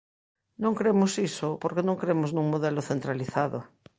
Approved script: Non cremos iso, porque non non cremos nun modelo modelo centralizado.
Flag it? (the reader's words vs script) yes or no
yes